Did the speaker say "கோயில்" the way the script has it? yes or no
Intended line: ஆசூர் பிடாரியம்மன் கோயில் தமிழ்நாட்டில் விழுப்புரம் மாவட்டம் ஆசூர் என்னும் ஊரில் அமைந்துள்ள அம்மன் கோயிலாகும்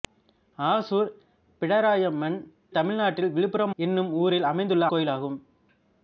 no